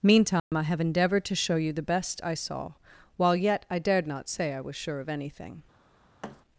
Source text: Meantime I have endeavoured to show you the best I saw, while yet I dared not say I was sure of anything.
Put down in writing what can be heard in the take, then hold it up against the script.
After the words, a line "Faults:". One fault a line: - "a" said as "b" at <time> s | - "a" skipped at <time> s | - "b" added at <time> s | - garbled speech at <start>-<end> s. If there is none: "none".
Meantime I have endeavoured to show you the best I saw, while yet I dared not say I was sure of anything.
Faults:
none